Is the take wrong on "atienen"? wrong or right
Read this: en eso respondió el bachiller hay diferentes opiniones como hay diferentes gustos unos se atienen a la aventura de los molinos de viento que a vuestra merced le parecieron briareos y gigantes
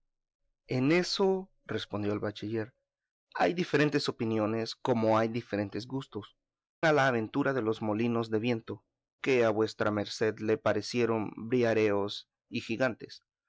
wrong